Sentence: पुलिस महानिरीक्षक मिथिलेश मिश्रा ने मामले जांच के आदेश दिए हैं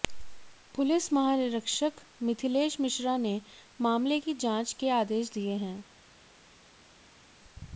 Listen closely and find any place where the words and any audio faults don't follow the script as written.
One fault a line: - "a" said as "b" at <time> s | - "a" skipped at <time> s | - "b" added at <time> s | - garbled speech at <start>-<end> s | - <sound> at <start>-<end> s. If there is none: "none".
- "की" added at 4.2 s